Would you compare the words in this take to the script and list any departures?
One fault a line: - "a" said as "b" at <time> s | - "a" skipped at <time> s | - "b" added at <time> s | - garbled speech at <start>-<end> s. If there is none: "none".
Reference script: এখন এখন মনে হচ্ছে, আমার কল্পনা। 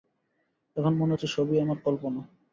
- "এখন" skipped at 0.9 s
- "সবই" added at 1.3 s